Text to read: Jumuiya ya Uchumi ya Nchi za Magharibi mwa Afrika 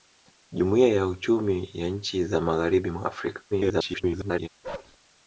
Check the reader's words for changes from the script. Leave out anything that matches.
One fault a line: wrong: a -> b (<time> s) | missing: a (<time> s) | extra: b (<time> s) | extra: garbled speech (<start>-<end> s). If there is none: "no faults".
extra: garbled speech (3.5-4.5 s)